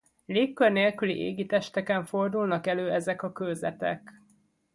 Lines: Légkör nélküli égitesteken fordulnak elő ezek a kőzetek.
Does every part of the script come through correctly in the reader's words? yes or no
yes